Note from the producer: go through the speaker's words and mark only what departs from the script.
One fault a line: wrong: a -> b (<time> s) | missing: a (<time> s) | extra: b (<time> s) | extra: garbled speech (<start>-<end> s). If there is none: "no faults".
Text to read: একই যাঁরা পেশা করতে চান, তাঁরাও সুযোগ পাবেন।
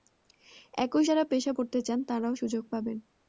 no faults